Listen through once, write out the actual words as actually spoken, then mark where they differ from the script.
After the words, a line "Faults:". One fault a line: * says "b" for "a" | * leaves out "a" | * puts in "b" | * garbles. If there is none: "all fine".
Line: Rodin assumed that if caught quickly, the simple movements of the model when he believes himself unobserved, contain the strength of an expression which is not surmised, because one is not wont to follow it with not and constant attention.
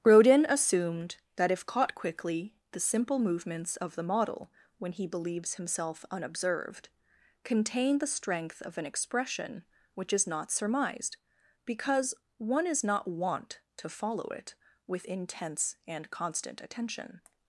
Rodin assumed that if caught quickly, the simple movements of the model when he believes himself unobserved, contain the strength of an expression which is not surmised, because one is not wont to follow it with intense and constant attention.
Faults:
* says "intense" for "not"